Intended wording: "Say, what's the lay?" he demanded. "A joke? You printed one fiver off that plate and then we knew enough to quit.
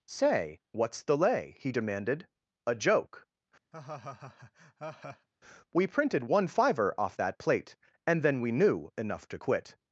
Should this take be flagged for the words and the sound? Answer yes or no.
yes